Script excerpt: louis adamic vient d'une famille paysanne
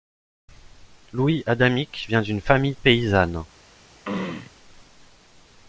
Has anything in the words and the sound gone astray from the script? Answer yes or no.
yes